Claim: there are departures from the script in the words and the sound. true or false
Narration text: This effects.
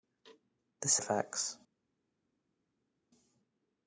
false